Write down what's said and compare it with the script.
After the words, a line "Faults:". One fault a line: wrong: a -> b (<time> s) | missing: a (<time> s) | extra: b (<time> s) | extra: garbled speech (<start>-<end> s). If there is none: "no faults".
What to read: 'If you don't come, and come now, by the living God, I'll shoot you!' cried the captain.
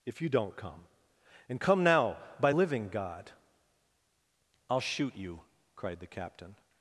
'If you don't come, and come now, by living God, I'll shoot you!' cried the captain.
Faults:
missing: the (2.5 s)